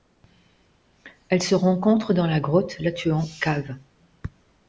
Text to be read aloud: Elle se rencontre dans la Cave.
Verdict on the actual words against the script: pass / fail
fail